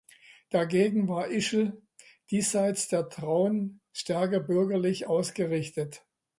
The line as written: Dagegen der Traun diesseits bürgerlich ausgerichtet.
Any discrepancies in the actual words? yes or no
yes